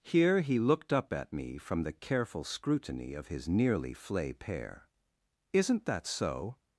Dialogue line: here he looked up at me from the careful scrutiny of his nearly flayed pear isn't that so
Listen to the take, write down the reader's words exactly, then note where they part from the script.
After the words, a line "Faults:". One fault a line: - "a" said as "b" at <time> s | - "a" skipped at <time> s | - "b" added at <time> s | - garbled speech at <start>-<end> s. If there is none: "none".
here he looked up at me from the careful scrutiny of his nearly flay pear isn't that so
Faults:
- "flayed" said as "flay" at 3.9 s